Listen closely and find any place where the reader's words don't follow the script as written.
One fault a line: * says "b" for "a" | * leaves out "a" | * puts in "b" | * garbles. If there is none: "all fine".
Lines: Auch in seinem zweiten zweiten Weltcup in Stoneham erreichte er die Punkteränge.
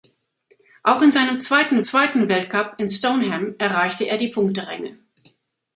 all fine